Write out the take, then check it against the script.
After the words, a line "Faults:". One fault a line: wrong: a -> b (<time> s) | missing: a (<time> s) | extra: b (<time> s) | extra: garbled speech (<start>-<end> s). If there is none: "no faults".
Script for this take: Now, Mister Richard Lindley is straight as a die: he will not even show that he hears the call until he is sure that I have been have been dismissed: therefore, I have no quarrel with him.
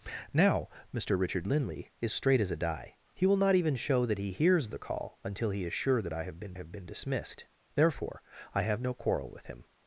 Now, Mister Richard Lindley is straight as a die: he will not even show that he hears the call until he is sure that I have been have been dismissed: therefore, I have no quarrel with him.
Faults:
no faults